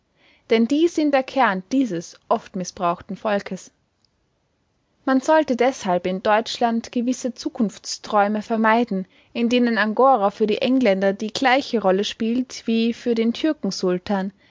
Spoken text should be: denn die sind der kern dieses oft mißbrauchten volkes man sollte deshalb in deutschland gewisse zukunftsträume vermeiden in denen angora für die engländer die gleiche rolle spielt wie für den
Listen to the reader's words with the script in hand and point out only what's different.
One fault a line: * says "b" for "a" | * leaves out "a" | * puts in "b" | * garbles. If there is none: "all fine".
all fine